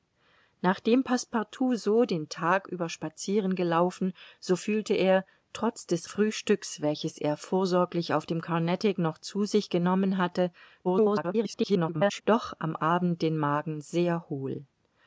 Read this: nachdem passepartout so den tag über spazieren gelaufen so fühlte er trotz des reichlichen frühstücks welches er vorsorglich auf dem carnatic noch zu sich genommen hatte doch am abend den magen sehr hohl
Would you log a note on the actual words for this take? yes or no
yes